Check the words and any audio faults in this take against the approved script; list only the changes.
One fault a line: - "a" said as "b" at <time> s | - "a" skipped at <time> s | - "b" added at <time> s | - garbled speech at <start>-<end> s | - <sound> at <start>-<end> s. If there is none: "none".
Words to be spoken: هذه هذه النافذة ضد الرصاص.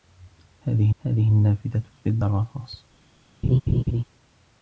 - laugh at 3.4-4.0 s